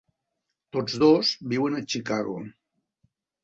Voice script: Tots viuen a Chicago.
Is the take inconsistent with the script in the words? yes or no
yes